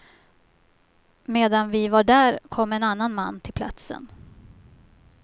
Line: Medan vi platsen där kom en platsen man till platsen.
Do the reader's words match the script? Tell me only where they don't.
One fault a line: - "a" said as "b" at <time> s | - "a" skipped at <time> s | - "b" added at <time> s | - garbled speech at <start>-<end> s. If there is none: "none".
- "platsen" said as "var" at 1.9 s
- "platsen" said as "annan" at 2.8 s